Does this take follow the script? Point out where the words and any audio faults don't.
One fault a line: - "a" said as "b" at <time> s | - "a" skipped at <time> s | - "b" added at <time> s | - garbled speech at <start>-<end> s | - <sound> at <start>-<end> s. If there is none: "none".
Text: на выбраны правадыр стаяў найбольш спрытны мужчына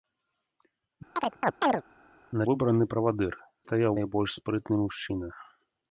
- chirp at 1.2-1.8 s